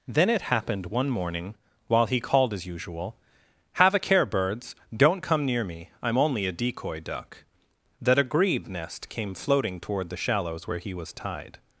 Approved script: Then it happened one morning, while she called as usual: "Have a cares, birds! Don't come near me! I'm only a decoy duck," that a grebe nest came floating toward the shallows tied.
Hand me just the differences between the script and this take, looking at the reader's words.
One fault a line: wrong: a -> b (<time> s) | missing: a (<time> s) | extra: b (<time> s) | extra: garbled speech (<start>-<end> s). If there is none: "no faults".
wrong: she -> he (2.1 s)
wrong: cares -> care (4.0 s)
extra: where he was (10.7 s)